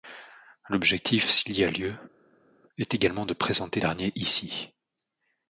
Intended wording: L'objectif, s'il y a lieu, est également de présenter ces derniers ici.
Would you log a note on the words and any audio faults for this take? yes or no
yes